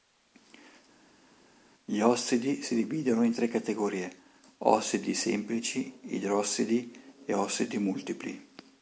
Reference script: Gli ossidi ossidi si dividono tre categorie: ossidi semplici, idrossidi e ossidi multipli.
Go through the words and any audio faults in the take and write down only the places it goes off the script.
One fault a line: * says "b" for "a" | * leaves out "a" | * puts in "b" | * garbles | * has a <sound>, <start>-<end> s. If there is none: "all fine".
* leaves out "ossidi"
* puts in "in"